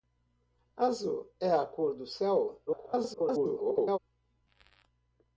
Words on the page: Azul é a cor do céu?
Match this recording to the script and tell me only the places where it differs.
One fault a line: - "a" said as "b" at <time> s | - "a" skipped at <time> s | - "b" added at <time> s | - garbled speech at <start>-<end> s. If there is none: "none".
- garbled speech at 2.7-4.0 s